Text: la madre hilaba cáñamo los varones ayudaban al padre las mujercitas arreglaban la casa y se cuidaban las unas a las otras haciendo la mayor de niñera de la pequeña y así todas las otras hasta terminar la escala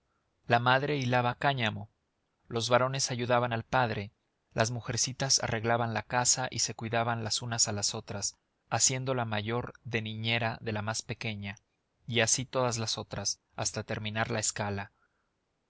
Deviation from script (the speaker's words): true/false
true